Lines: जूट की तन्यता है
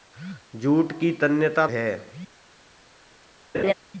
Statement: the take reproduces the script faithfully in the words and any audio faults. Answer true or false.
false